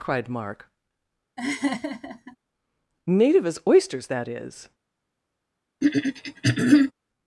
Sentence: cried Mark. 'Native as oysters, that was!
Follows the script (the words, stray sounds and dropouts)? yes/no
no